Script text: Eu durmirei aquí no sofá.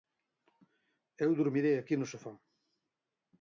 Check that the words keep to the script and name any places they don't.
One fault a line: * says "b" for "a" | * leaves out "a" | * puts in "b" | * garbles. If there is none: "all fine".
all fine